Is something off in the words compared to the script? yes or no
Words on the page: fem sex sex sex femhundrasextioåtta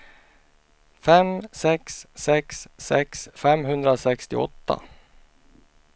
no